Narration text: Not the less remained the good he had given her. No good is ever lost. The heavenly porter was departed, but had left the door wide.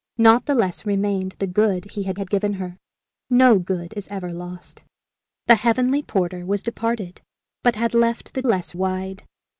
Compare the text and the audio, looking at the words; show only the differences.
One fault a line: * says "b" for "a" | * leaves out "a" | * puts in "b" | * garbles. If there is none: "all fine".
* puts in "had"
* says "less" for "door"